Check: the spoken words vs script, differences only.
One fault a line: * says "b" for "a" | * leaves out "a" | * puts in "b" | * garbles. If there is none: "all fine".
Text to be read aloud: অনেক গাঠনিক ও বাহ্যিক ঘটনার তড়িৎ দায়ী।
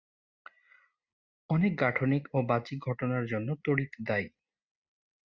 * puts in "জন্য"